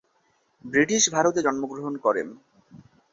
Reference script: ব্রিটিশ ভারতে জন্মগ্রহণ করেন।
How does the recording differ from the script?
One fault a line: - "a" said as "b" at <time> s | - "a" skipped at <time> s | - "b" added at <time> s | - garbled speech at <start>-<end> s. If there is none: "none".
none